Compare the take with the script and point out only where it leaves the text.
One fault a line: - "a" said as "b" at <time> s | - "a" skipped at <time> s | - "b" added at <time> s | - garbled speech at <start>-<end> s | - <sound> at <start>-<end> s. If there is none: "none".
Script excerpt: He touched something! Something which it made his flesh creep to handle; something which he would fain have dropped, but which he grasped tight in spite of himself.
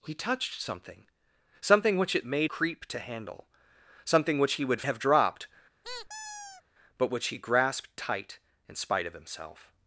- "his flesh" skipped at 2.5 s
- "fain" skipped at 4.8 s
- squeak at 5.8-6.6 s